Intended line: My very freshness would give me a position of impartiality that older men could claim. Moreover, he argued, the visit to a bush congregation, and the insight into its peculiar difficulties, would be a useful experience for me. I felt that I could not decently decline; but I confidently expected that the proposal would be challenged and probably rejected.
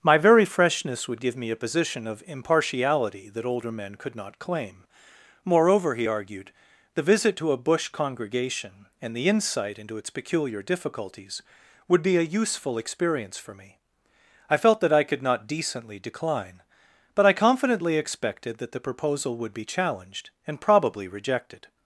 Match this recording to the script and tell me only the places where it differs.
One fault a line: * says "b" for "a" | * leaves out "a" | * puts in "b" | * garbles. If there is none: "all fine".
* puts in "not"